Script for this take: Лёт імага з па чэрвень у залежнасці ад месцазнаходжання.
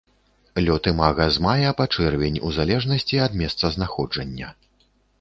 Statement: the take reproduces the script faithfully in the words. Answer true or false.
false